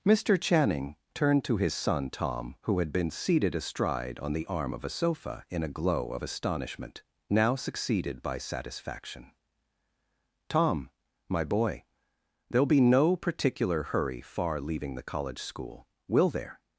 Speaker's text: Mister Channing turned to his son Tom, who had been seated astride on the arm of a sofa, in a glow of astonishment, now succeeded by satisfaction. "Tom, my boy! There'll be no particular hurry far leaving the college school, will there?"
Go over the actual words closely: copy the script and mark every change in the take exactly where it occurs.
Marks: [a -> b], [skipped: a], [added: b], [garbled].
Mister Channing turned to his son Tom, who had been seated astride on the arm of a sofa, in a glow of astonishment, now succeeded by satisfaction. "Tom, my boy! There'll be no particular hurry far leaving the college school, will there?"